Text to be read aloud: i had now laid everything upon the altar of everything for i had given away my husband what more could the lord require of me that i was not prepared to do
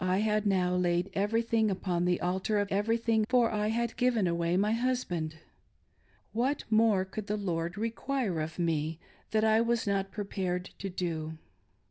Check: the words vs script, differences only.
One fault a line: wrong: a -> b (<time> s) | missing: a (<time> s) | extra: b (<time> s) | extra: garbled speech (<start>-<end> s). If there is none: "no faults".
no faults